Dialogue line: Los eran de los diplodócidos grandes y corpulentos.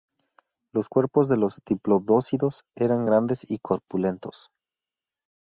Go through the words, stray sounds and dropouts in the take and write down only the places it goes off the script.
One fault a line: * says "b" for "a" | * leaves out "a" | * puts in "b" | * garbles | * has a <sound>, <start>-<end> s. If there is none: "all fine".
* says "cuerpos" for "eran"
* puts in "eran"